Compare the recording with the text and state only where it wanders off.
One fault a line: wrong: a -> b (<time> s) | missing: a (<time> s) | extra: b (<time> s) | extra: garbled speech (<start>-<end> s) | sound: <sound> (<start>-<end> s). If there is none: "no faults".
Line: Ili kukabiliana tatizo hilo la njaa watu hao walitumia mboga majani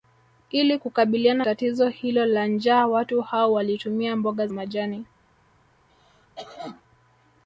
sound: cough (5.9-6.8 s)